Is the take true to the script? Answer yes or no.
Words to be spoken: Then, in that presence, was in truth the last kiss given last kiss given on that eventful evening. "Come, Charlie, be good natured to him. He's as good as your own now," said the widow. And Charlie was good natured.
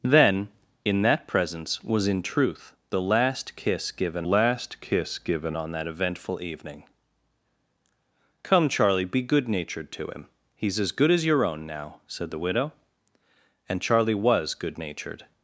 yes